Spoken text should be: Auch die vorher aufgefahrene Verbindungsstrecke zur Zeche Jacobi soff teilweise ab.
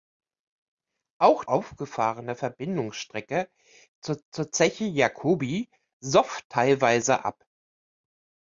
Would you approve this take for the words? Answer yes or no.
no